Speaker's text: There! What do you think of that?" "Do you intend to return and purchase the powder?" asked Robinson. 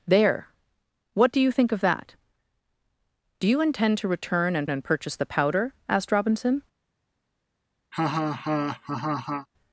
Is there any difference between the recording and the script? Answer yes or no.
yes